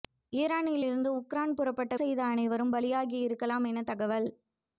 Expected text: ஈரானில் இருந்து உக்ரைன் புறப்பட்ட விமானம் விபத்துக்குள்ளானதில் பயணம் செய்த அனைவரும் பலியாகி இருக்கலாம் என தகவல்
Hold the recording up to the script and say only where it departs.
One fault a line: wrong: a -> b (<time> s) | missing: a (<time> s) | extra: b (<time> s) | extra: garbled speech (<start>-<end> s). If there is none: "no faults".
missing: விமானம் விபத்துக்குள்ளானதில் பயணம் (1.9 s)